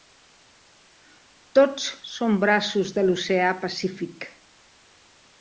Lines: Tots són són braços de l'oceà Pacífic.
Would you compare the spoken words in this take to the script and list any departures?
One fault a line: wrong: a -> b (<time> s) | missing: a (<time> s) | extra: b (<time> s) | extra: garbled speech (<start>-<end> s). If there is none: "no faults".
missing: són (2.4 s)